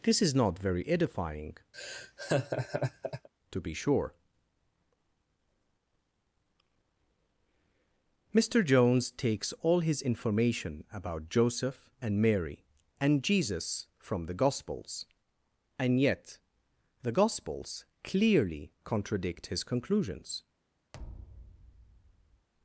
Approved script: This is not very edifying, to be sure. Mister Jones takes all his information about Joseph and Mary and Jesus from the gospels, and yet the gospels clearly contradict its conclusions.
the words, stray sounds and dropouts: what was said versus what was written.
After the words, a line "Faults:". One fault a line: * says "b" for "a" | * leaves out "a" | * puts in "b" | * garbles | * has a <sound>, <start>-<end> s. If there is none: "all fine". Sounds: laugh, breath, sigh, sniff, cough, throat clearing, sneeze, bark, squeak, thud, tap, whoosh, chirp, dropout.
This is not very edifying, to be sure. Mister Jones takes all his information about Joseph and Mary and Jesus from the gospels, and yet the gospels clearly contradict his conclusions.
Faults:
* has a laugh, 1.7-3.3 s
* says "his" for "its"
* has a thud, 20.9-22.5 s